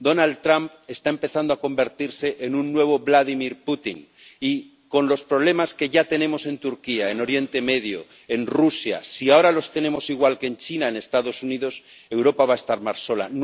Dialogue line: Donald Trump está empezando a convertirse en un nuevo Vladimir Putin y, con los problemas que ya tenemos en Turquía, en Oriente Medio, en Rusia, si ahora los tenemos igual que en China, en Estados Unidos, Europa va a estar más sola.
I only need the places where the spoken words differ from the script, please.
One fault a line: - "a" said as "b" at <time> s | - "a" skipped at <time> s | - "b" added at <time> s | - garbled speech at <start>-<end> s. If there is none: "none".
none